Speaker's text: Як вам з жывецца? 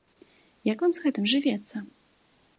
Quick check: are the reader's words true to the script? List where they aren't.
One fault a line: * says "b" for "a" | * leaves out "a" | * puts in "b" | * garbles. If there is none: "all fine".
* puts in "гэтым"